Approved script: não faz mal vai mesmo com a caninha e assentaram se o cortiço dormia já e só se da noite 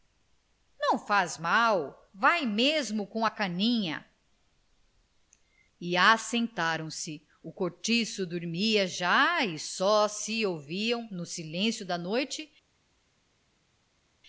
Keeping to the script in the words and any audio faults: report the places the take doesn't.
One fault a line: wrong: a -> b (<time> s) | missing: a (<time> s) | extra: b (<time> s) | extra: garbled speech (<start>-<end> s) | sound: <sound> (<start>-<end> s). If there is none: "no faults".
extra: ouviam no silêncio (10.5 s)